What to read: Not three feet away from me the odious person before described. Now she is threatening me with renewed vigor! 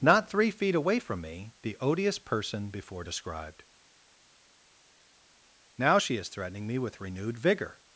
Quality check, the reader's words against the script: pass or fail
pass